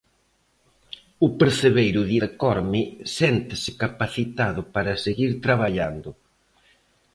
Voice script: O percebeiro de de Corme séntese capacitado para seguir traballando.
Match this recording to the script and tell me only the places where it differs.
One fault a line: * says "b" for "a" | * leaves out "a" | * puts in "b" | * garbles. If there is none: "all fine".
all fine